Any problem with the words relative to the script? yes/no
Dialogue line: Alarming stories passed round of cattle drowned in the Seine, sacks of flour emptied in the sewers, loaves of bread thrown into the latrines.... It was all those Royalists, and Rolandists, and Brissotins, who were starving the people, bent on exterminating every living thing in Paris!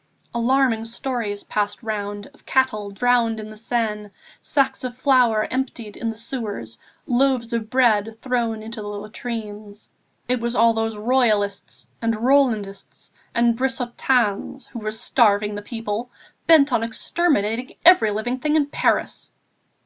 no